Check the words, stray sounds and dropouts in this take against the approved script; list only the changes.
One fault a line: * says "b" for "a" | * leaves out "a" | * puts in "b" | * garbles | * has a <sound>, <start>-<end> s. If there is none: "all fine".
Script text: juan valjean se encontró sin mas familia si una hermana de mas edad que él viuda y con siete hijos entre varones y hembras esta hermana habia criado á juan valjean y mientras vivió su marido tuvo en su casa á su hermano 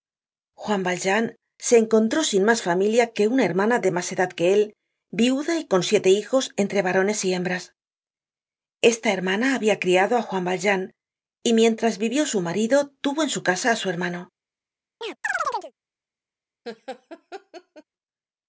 * says "que" for "si"
* has a chirp, 15.0-15.7 s
* has a laugh, 16.6-17.8 s